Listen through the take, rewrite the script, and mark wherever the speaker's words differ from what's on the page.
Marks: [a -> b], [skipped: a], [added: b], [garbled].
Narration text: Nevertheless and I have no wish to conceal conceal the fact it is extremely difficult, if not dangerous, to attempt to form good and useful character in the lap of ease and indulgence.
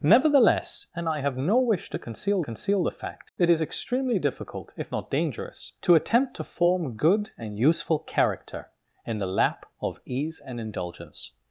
Nevertheless and I have no wish to conceal conceal the fact it is extremely difficult, if not dangerous, to attempt to form good and useful character in the lap of ease and indulgence.